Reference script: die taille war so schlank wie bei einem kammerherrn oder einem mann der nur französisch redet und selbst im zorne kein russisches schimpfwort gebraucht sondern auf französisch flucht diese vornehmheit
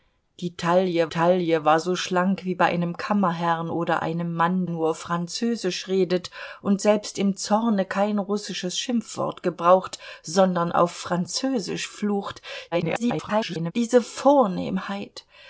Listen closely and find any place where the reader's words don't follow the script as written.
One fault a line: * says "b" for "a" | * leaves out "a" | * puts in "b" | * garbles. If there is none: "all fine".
* puts in "taille"
* leaves out "der"
* garbles